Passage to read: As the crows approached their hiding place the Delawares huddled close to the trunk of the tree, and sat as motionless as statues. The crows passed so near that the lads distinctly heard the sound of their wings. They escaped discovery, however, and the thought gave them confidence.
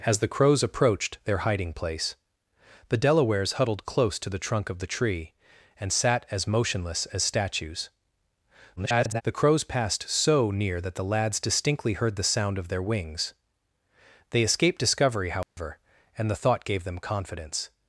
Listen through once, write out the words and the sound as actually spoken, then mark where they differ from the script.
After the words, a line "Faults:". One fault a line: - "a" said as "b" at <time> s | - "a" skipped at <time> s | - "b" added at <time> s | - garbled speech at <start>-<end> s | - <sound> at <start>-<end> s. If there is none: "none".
As the crows approached their hiding place the Delawares huddled close to the trunk of the tree, and sat as motionless as statues. [garbled] The crows passed so near that the lads distinctly heard the sound of their wings. They escaped discovery, however, and the thought gave them confidence.
Faults:
- garbled speech at 8.8-9.2 s
- dropout at 15.4-15.6 s